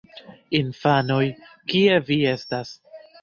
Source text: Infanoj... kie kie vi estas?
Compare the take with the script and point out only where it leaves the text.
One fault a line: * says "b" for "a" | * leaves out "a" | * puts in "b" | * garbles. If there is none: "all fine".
* leaves out "kie"